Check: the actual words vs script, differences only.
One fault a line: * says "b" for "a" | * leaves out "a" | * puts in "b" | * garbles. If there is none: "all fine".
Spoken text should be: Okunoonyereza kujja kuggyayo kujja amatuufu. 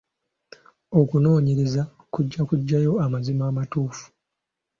* says "amazima" for "kujja"